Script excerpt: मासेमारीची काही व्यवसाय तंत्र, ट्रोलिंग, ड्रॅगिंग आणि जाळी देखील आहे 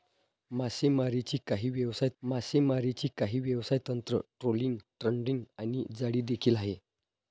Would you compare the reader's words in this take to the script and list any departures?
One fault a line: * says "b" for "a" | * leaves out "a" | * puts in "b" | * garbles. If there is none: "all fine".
* puts in "मासेमारीची काही व्यवसाय"